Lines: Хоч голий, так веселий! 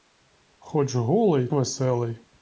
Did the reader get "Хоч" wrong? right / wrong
right